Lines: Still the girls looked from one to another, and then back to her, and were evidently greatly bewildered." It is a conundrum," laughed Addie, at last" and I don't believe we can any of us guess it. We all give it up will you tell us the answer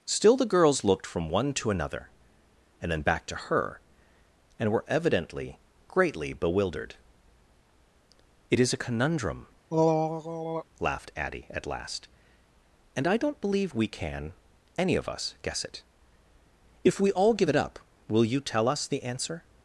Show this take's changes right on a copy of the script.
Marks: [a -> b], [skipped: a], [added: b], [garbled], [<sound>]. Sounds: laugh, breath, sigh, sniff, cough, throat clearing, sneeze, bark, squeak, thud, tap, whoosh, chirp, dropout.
Still the girls looked from one to another, and then back to her, and were evidently greatly bewildered." It is a conundrum," [throat clearing] laughed Addie, at last" and I don't believe we can any of us guess it. [added: If] We all give it up will you tell us the answer